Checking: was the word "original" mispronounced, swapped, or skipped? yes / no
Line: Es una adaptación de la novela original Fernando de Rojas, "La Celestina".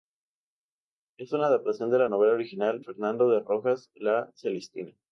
no